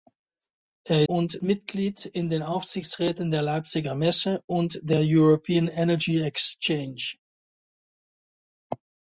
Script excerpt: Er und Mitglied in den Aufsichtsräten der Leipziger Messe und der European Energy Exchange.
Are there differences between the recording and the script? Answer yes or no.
no